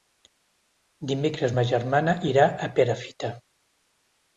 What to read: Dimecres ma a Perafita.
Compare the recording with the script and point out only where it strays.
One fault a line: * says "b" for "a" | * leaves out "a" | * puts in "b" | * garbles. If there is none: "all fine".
* puts in "germana irà"